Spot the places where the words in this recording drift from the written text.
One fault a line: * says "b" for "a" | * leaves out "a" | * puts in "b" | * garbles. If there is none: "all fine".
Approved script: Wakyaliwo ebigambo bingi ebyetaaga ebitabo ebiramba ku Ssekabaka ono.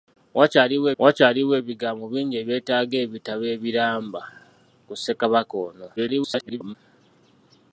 * puts in "wakyaliwo"
* garbles